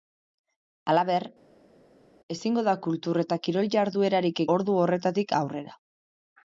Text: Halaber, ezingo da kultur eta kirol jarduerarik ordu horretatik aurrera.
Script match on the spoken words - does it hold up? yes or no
yes